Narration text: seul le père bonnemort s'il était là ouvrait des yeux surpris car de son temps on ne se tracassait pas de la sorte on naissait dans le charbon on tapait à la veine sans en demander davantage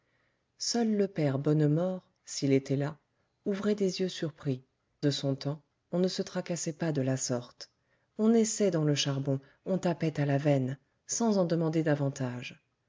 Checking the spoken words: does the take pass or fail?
fail